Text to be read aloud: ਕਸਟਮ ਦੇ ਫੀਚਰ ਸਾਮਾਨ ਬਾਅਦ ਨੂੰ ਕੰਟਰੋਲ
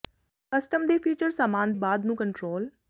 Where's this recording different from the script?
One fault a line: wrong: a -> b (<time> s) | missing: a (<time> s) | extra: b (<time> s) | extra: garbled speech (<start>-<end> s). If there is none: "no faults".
no faults